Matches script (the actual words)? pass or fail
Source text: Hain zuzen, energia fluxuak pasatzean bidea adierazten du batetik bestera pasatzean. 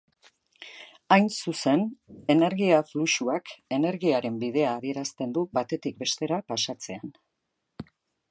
fail